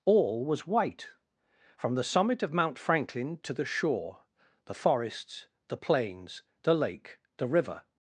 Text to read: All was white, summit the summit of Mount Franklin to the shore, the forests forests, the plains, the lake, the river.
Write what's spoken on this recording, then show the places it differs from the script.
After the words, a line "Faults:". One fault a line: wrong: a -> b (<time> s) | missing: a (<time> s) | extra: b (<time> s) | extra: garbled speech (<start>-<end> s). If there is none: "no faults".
All was white, from the summit of Mount Franklin to the shore, the forests, the plains, the lake, the river.
Faults:
wrong: summit -> from (1.8 s)
missing: forests (5.5 s)